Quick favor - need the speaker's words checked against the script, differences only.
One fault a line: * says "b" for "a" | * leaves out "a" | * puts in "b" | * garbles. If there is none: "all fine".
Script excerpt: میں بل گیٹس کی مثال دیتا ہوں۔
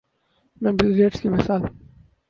* leaves out "دیتا"